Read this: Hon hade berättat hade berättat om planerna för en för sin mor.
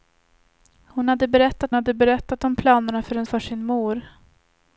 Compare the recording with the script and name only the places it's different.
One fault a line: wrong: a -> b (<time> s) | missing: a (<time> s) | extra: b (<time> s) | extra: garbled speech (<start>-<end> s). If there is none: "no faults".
no faults